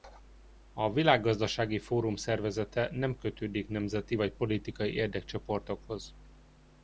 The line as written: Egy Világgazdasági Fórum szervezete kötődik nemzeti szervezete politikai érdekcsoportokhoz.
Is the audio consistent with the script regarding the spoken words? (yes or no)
no